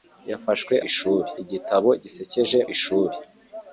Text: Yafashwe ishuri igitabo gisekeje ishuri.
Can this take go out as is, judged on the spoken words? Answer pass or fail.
pass